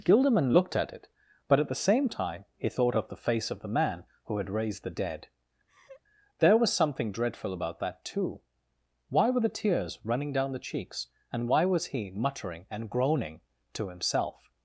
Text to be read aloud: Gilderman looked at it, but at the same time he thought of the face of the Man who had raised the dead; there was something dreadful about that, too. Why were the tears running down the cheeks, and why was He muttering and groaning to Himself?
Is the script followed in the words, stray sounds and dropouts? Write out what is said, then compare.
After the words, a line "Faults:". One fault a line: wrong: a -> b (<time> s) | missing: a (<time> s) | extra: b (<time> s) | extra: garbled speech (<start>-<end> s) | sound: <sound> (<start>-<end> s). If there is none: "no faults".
Gilderman looked at it, but at the same time he thought of the face of the Man who had raised the dead; there was something dreadful about that, too. Why were the tears running down the cheeks, and why was He muttering and groaning to Himself?
Faults:
sound: laugh (5.7-6.0 s)